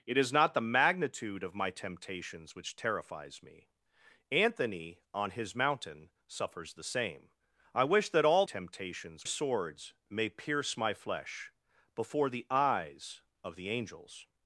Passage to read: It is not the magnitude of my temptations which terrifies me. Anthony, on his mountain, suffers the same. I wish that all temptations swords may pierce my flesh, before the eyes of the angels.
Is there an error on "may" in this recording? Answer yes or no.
no